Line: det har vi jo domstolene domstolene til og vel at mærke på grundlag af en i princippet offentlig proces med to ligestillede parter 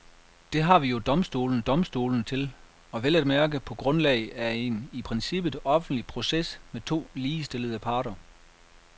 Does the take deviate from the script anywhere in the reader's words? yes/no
no